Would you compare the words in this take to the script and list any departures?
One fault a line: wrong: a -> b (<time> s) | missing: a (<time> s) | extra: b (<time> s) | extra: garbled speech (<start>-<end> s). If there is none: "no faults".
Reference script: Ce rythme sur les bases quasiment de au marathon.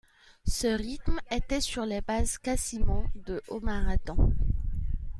extra: était (1.3 s)